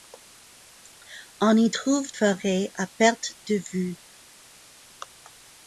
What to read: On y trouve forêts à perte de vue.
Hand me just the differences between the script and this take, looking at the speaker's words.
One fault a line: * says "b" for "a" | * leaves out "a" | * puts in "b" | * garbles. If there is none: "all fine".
all fine